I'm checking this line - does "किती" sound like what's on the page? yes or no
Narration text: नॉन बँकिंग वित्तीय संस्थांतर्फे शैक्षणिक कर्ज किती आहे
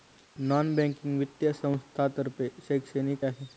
no